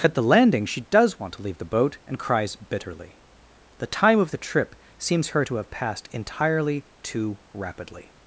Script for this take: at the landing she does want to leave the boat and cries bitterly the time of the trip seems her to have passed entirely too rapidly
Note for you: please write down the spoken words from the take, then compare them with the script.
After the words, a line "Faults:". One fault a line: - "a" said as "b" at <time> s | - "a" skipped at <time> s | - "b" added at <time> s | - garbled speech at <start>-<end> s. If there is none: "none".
at the landing she does want to leave the boat and cries bitterly the time of the trip seems her to have passed entirely too rapidly
Faults:
none